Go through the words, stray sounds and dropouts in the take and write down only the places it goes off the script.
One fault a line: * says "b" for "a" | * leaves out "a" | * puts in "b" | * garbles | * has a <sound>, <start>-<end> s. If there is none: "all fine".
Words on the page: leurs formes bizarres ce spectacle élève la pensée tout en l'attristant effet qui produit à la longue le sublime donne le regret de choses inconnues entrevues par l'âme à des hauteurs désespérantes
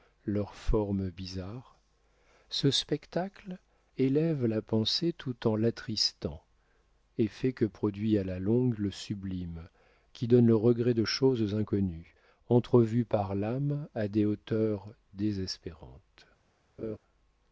* says "que" for "qui"
* puts in "qui"
* has a laugh, 16.8-17.0 s